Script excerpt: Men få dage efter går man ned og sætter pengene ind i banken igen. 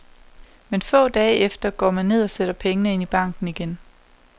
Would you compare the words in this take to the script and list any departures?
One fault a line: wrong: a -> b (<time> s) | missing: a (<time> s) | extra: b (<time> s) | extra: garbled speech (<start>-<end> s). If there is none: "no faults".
no faults